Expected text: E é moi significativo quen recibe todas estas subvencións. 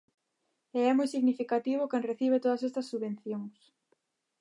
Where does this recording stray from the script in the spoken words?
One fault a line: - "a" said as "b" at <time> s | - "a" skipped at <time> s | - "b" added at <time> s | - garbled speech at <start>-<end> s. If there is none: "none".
none